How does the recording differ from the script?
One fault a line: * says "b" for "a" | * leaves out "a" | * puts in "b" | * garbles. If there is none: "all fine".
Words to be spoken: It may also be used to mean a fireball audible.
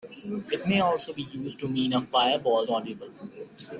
all fine